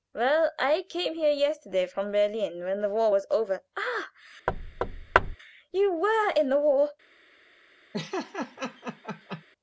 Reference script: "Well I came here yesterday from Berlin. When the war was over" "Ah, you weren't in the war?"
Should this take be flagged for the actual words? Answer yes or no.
yes